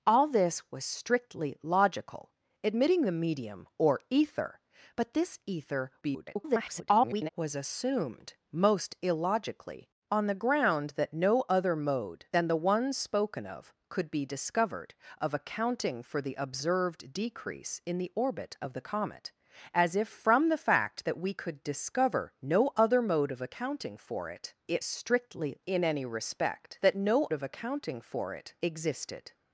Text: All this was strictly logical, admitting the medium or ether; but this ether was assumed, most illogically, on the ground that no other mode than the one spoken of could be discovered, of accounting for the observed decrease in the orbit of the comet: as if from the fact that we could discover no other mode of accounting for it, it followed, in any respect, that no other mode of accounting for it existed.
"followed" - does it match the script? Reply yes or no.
no